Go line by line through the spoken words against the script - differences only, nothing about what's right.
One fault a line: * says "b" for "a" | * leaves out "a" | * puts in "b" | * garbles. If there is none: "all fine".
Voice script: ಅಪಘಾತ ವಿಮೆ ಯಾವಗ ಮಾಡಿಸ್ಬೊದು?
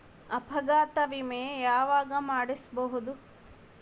all fine